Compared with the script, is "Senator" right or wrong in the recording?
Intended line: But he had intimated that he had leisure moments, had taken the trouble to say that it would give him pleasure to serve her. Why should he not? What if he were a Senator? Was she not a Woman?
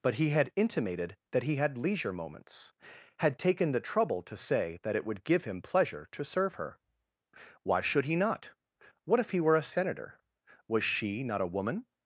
right